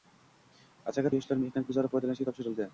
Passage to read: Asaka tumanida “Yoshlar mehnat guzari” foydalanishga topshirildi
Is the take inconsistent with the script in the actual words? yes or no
yes